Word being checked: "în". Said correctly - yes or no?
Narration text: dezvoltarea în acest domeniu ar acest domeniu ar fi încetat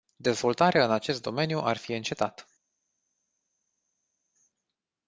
yes